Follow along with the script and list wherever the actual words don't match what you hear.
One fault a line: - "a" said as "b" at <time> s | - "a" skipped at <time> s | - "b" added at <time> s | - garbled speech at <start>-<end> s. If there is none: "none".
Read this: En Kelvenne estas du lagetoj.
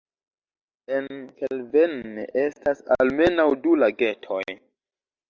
- "almenaŭ" added at 3.0 s